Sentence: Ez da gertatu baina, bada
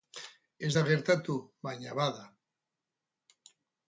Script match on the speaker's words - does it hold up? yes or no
yes